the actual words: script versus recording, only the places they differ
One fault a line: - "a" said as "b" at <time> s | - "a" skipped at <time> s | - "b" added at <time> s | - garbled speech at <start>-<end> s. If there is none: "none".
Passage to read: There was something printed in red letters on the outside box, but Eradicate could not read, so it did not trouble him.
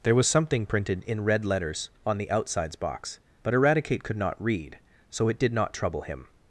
- "outside" said as "outsides" at 2.3 s